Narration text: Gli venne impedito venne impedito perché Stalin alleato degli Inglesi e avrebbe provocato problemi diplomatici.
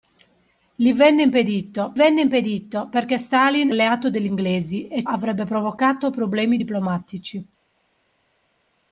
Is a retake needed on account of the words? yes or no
no